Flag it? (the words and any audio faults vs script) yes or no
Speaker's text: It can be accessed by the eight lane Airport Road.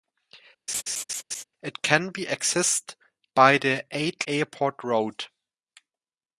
yes